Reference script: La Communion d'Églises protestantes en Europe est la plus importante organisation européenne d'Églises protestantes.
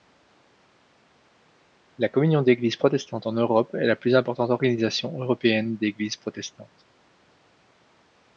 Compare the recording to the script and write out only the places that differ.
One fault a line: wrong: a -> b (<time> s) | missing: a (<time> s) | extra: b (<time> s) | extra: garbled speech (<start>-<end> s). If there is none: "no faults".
no faults